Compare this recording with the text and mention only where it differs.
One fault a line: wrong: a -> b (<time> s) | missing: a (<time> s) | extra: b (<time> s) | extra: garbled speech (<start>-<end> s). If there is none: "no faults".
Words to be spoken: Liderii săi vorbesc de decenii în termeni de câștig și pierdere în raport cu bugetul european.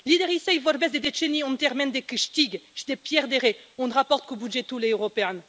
extra: de (2.9 s)